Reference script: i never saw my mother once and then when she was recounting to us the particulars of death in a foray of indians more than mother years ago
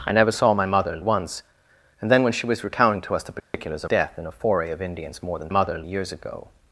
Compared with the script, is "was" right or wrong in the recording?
right